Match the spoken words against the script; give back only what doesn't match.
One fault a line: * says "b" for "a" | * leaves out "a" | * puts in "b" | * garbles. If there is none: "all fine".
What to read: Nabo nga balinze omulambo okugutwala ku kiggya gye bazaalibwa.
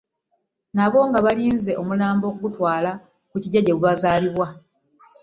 all fine